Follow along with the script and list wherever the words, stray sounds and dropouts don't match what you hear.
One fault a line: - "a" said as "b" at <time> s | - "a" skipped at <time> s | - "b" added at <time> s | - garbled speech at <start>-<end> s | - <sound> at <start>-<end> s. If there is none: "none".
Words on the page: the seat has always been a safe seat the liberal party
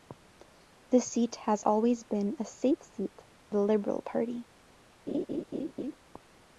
- laugh at 5.1-6.0 s